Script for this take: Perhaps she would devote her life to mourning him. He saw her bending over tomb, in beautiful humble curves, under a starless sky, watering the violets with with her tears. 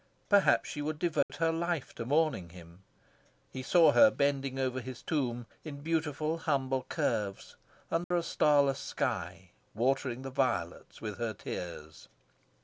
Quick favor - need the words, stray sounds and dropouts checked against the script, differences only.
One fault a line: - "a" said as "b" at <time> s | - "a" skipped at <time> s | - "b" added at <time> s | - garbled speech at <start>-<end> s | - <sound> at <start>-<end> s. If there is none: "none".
- dropout at 1.2-1.3 s
- "his" added at 4.8 s
- dropout at 8.0-8.1 s
- "with" skipped at 11.2 s